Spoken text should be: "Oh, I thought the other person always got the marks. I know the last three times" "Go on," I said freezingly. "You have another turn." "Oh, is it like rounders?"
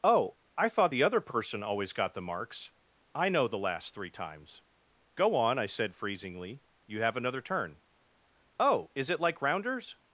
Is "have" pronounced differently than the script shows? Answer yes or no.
no